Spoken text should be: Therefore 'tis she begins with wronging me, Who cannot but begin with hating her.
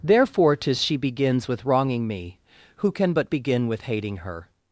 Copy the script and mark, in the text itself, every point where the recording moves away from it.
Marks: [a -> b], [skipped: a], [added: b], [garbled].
Therefore 'tis she begins with wronging me, Who [cannot -> can] but begin with hating her.